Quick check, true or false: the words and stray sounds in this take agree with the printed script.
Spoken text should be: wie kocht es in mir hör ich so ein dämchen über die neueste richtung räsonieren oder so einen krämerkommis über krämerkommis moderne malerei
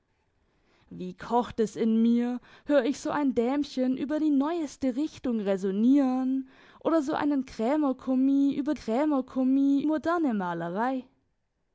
true